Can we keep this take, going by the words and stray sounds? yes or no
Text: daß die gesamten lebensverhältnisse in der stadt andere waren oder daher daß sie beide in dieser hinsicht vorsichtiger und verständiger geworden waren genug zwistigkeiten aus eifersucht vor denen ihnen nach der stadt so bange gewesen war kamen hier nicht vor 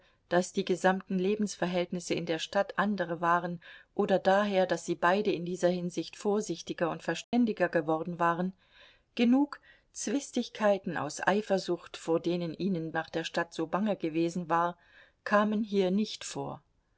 no